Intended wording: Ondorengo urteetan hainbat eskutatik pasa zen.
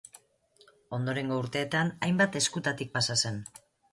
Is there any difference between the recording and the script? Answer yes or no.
no